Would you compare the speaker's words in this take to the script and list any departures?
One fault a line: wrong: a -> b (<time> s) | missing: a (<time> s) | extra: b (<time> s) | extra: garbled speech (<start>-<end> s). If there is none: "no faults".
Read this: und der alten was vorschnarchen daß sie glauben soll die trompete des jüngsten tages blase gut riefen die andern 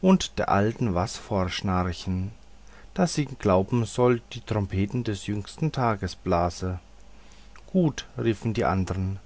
no faults